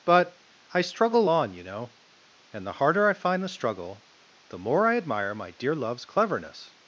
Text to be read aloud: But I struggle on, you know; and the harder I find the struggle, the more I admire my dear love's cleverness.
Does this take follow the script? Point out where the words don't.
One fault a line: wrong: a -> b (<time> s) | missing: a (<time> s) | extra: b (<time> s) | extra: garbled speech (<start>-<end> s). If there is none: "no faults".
no faults